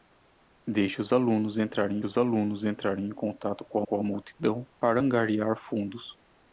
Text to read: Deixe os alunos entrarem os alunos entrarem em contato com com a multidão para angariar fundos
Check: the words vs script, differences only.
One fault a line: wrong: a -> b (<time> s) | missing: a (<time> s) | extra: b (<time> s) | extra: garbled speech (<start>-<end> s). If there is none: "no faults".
no faults